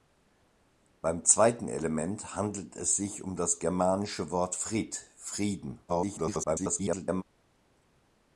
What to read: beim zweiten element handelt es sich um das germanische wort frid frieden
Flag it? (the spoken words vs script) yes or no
yes